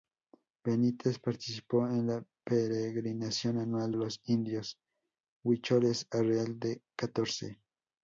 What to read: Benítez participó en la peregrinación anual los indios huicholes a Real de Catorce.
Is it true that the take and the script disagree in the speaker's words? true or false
false